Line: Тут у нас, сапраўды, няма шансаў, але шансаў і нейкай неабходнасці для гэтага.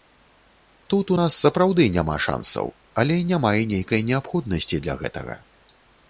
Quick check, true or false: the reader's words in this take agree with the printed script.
false